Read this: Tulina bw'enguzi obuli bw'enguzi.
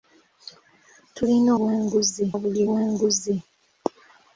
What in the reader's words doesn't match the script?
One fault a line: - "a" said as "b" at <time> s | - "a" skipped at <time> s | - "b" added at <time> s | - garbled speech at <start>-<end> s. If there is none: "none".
none